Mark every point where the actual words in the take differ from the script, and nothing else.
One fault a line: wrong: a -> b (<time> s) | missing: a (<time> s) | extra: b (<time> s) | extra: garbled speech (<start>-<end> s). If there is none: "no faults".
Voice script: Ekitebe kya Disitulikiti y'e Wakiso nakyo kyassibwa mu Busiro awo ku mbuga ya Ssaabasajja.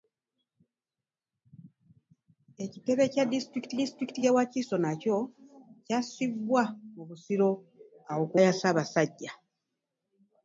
extra: Disitulikiti (3.8 s)
missing: mbuga (8.4 s)